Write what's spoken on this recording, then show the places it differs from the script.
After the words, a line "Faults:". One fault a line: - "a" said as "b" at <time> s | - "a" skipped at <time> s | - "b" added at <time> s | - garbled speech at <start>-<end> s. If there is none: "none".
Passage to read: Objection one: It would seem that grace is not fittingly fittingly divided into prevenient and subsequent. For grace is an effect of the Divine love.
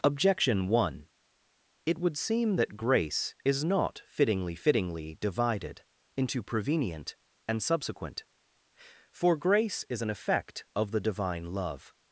Objection one: It would seem that grace is not fittingly fittingly divided into prevenient and subsequent. For grace is an effect of the Divine love.
Faults:
none